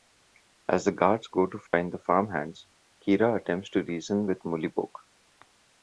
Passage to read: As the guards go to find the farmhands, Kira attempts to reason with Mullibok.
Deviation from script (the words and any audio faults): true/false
true